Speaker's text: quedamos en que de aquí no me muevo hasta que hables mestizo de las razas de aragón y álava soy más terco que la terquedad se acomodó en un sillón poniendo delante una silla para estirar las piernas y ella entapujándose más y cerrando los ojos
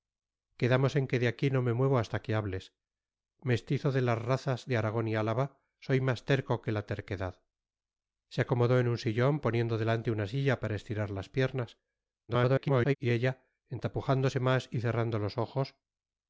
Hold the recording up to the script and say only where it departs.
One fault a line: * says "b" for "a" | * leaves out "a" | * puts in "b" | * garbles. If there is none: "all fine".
* garbles